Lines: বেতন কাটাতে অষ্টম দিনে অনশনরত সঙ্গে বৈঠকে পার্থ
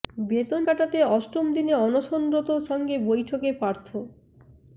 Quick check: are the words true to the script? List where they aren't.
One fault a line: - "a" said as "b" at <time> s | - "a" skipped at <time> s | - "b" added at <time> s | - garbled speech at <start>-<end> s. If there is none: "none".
none